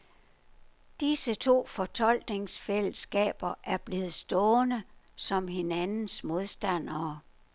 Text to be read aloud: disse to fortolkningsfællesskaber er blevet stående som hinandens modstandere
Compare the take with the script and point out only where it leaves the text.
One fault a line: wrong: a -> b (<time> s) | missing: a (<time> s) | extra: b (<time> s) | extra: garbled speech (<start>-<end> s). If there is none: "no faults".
no faults